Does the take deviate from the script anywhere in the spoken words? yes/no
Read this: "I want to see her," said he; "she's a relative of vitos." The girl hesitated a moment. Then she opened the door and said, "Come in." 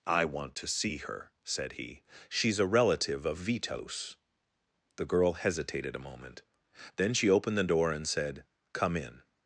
no